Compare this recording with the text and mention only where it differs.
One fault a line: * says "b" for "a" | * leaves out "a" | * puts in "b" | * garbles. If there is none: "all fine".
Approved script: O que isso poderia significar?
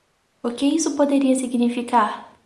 all fine